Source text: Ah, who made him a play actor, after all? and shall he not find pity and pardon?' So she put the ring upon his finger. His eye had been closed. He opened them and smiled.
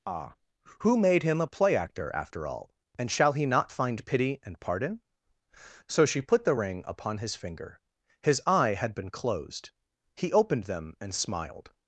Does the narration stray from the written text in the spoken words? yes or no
no